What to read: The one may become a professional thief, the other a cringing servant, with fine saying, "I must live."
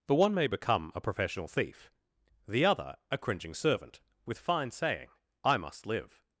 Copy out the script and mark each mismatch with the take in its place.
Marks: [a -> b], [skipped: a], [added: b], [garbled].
The one may become a professional thief, the other a cringing servant, with fine saying, "I must live."